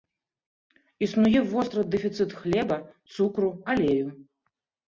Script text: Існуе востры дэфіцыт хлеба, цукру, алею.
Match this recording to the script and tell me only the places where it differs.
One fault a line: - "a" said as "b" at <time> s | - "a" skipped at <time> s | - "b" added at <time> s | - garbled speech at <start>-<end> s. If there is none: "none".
none